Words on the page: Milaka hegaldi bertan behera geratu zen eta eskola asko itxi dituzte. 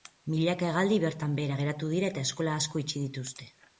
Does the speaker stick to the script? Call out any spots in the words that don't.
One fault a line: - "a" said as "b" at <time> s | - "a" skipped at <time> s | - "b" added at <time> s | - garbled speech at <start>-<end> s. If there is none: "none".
- "zen" said as "dira" at 2.0 s